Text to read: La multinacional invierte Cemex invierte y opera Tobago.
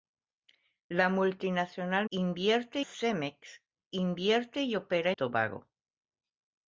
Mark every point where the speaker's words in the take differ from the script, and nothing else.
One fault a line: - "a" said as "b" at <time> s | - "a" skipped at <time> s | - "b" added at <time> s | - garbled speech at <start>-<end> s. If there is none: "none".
none